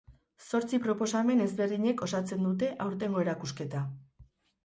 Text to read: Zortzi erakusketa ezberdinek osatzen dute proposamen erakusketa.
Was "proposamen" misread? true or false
true